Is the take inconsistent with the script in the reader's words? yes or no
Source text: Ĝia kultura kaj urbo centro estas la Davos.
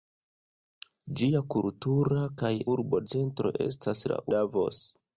no